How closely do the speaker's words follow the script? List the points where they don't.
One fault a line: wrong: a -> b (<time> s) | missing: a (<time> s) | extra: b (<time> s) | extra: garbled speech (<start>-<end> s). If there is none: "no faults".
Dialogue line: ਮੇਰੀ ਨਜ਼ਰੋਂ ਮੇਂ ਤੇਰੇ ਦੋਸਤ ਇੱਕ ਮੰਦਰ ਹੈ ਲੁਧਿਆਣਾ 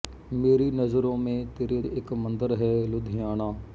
missing: ਦੋਸਤ (1.8 s)